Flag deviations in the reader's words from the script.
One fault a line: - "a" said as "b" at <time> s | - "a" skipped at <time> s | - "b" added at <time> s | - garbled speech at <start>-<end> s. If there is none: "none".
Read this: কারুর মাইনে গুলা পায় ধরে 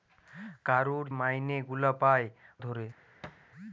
none